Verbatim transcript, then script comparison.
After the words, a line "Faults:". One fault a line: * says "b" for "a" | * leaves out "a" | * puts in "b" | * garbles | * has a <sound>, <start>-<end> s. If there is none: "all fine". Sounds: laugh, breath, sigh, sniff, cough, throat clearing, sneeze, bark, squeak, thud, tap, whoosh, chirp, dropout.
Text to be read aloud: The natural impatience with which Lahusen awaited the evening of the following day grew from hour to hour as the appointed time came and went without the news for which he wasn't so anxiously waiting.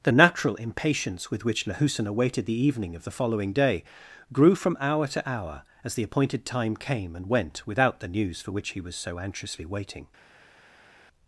The natural impatience with which Lahusen awaited the evening of the following day grew from hour to hour as the appointed time came and went without the news for which he was so anxiously waiting.
Faults:
* says "was" for "wasn't"